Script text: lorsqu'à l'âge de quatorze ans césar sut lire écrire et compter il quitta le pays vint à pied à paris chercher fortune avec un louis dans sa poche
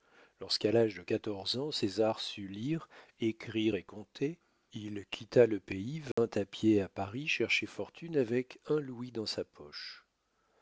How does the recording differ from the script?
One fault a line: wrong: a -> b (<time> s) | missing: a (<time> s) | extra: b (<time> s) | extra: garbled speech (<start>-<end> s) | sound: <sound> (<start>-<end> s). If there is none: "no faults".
sound: dropout (6.1-6.2 s)